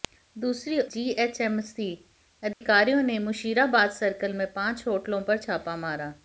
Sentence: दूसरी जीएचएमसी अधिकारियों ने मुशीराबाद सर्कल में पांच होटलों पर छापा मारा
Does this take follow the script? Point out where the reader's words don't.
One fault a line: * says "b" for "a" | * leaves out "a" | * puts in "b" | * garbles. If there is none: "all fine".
all fine